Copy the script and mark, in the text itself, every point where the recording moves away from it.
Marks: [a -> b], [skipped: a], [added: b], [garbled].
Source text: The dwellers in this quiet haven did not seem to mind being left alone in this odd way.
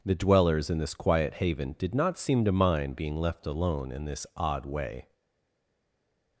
The dwellers in this quiet haven did not seem to mind being left alone in this odd way.